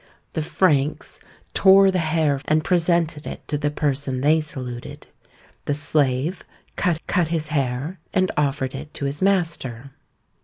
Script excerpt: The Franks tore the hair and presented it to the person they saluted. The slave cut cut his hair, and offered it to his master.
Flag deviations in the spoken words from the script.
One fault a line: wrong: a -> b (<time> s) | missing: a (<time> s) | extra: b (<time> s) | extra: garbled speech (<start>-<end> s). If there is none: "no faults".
no faults